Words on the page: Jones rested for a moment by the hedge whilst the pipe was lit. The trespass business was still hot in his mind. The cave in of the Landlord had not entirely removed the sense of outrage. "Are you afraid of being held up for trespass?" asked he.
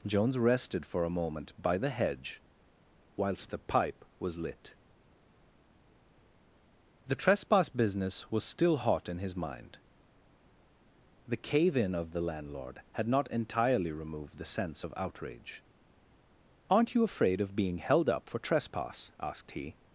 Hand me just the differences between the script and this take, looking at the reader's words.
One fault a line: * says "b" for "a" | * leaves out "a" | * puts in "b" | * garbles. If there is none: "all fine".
* says "Aren't" for "Are"